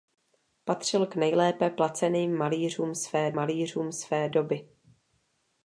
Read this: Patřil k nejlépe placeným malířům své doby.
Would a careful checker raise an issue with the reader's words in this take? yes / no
yes